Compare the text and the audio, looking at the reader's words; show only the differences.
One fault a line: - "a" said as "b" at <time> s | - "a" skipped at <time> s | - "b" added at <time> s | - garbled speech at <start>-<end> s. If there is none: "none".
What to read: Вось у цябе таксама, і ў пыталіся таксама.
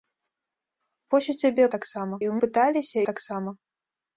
none